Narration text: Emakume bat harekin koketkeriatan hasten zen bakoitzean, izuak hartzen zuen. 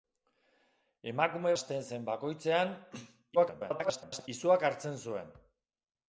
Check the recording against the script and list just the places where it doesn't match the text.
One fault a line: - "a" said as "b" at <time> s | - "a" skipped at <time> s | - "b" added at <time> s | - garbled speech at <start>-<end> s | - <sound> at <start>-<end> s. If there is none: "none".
- "bat harekin koketkeriatan" skipped at 1.5 s
- garbled speech at 3.3-4.3 s